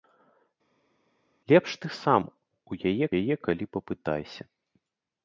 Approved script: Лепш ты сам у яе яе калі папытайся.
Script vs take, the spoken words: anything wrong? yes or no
no